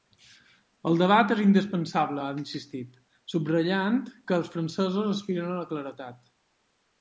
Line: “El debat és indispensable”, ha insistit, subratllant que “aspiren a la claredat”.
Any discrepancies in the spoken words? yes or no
yes